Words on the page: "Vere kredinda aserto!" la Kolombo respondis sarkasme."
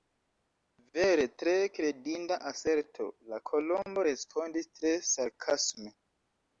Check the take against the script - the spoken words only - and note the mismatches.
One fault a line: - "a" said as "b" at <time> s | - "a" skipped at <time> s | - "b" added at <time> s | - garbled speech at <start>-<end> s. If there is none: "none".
- "tre" added at 1.4 s
- "tre" added at 4.8 s